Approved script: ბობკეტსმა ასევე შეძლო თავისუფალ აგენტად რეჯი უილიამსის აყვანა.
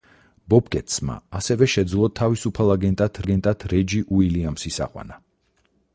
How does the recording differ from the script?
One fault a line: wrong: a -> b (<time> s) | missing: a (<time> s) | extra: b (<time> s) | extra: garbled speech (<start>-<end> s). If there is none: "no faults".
extra: აგენტად (3.2 s)